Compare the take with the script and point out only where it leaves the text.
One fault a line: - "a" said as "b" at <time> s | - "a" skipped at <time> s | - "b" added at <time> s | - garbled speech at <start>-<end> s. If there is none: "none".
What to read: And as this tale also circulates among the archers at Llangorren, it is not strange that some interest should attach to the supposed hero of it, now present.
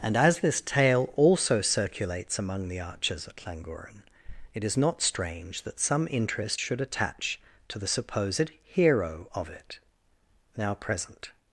none